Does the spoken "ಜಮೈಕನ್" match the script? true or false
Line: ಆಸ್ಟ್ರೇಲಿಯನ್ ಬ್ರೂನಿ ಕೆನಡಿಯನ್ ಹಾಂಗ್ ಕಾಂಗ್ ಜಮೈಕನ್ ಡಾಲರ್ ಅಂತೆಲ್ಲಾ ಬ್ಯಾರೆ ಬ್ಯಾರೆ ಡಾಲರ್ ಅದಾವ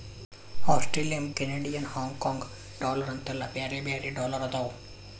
false